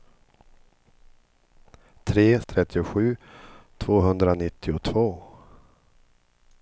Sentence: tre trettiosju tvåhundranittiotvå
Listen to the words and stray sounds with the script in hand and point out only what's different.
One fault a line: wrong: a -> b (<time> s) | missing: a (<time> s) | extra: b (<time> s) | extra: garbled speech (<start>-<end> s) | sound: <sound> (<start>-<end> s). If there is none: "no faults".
no faults